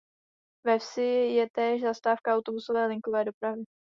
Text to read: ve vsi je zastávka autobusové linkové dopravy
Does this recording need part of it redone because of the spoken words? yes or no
yes